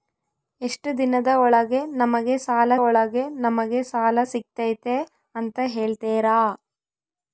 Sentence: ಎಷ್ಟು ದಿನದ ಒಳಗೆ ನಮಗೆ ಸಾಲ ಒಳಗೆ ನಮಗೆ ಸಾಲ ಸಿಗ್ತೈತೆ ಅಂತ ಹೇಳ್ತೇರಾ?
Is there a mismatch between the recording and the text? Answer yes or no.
no